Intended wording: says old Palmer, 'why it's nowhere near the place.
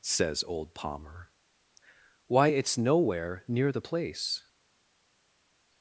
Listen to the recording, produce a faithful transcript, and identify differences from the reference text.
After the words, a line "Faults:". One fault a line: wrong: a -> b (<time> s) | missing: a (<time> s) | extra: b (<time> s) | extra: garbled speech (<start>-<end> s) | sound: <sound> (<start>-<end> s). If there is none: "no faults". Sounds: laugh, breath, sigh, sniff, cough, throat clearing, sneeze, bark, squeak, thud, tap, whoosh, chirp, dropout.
says old Palmer, 'why it's nowhere near the place.
Faults:
no faults